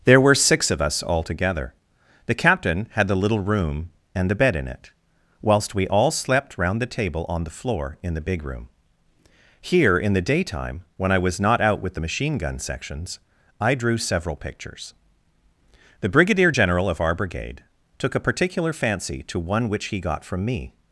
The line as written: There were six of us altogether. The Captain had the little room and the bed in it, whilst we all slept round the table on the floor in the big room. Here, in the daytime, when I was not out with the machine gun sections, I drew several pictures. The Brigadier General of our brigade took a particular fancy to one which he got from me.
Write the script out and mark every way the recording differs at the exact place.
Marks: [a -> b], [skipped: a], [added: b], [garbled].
There were six of us altogether. The Captain had the little room and the bed in it, whilst we all slept round the table on the floor in the big room. Here, in the daytime, when I was not out with the machine gun sections, I drew several pictures. The Brigadier General of our brigade took a particular fancy to one which he got from me.